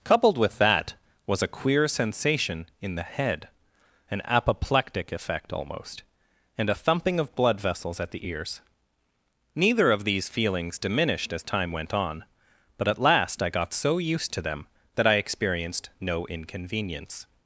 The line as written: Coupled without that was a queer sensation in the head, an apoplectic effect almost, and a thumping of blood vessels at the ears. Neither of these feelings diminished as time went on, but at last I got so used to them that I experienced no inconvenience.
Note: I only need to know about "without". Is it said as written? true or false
false